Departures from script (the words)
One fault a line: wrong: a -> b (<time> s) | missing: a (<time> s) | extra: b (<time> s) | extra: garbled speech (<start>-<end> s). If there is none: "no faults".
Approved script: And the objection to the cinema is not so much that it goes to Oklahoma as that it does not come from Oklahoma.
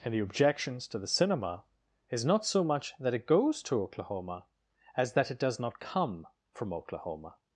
wrong: objection -> objections (0.2 s)